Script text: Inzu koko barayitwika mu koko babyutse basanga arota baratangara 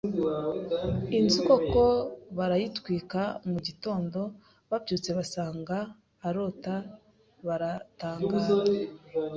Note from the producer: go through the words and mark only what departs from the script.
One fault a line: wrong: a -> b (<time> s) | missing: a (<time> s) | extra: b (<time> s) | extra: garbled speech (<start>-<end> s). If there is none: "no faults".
wrong: koko -> gitondo (3.7 s)